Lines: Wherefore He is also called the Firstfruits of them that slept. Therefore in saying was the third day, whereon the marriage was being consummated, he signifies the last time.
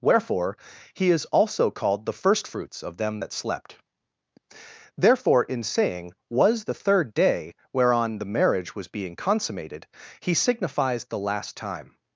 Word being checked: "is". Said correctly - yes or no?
yes